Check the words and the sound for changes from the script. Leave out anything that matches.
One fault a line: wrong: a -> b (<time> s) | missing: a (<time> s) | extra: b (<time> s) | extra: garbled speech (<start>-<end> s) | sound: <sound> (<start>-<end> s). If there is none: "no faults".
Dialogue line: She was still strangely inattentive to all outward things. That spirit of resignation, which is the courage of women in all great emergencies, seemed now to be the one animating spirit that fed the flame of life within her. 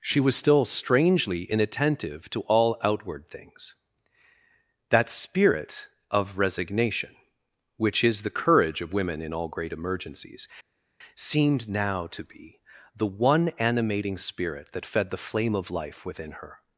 no faults